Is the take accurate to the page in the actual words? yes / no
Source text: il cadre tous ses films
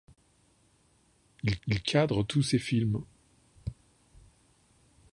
no